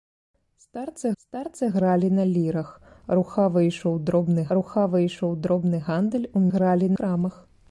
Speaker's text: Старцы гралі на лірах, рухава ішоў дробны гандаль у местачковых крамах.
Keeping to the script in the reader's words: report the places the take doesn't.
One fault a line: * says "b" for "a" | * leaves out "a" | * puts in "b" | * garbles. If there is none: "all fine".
* puts in "старцы"
* puts in "рухава ішоў дробны"
* says "гралі" for "местачковых"